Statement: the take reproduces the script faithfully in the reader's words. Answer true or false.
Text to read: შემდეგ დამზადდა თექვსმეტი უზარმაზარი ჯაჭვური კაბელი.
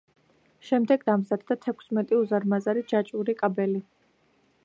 true